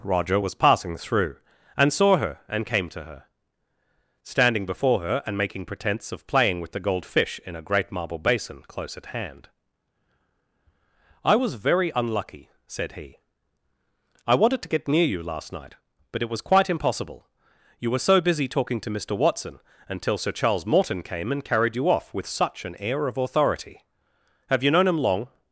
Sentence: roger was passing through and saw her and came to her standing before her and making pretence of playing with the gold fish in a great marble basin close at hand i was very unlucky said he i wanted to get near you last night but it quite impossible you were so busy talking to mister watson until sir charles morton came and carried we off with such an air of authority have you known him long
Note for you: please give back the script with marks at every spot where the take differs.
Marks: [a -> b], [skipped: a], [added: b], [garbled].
roger was passing through and saw her and came to her standing before her and making pretence of playing with the gold fish in a great marble basin close at hand i was very unlucky said he i wanted to get near you last night but it [added: was] quite impossible you were so busy talking to mister watson until sir charles morton came and carried [we -> you] off with such an air of authority have you known him long